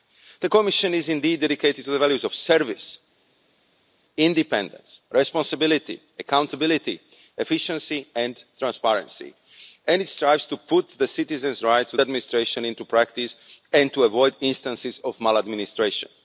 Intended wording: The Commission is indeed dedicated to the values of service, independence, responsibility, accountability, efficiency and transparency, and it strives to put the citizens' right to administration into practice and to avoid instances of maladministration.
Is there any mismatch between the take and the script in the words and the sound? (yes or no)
no